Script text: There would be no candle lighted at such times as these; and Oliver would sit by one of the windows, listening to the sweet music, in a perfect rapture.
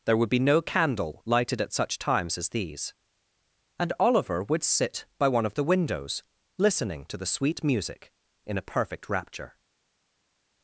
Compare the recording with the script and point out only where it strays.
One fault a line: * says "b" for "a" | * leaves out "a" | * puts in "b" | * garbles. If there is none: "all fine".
all fine